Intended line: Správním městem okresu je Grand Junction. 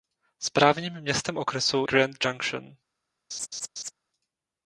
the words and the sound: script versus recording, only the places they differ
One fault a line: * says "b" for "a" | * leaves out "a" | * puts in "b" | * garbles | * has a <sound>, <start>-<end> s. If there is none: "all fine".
* leaves out "je"
* has a laugh, 3.3-3.9 s